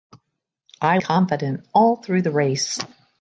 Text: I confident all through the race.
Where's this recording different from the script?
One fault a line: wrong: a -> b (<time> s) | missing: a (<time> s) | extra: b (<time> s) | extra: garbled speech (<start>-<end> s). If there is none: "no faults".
no faults